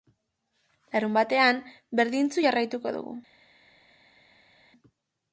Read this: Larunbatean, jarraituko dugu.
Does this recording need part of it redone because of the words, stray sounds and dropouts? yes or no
yes